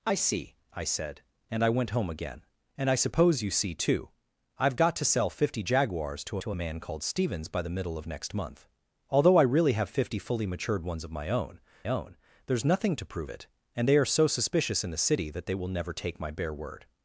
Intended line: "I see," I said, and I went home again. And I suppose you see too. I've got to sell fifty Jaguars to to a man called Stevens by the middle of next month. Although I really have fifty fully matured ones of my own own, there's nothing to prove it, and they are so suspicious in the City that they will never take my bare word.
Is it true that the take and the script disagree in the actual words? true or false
false